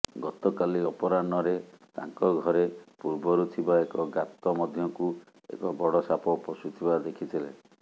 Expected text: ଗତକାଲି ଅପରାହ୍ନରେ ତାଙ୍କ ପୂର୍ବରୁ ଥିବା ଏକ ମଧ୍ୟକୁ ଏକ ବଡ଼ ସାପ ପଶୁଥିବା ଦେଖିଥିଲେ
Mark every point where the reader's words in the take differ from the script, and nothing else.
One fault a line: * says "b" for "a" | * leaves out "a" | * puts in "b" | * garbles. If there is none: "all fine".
* puts in "ଘରେ"
* puts in "ଗାତ"